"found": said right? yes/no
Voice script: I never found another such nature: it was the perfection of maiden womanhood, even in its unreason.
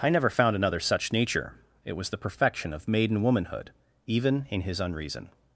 yes